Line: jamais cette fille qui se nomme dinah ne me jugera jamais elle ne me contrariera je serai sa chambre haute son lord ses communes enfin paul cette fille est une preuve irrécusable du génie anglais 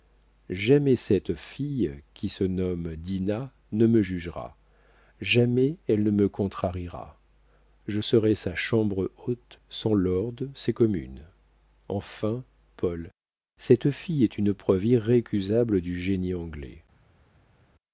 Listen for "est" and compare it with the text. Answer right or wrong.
right